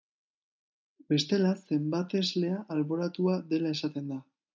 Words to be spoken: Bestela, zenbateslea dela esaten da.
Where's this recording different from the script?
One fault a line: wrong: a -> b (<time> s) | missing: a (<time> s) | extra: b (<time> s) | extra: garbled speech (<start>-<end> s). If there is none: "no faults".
extra: alboratua (2.8 s)